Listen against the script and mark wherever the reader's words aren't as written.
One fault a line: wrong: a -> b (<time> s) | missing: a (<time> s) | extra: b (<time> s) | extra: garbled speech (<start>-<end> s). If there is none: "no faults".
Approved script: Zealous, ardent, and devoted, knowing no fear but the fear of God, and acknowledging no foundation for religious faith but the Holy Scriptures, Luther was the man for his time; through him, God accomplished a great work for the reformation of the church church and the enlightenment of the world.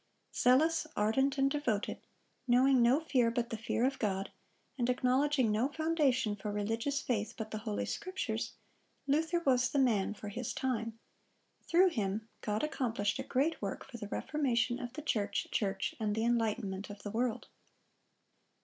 no faults